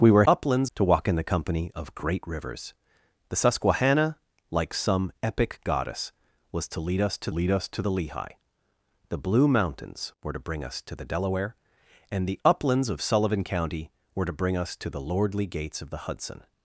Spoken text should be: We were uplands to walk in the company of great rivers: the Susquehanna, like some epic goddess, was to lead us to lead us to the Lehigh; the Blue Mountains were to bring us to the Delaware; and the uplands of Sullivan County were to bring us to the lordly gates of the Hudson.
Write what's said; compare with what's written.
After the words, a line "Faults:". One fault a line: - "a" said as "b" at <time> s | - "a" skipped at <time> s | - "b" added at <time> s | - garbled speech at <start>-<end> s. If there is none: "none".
We were uplands to walk in the company of great rivers: the Susquehanna, like some epic goddess, was to lead us to lead us to the Lehigh; the Blue Mountains were to bring us to the Delaware; and the uplands of Sullivan County were to bring us to the lordly gates of the Hudson.
Faults:
none